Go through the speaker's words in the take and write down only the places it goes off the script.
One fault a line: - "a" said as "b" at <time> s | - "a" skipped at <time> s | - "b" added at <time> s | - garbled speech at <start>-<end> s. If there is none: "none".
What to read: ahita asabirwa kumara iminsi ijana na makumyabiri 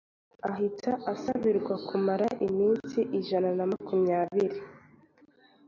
none